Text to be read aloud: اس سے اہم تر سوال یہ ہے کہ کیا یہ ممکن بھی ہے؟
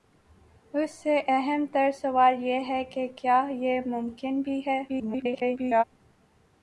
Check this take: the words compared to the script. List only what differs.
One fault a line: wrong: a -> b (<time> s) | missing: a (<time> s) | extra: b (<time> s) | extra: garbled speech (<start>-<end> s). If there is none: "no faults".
extra: garbled speech (4.9-5.8 s)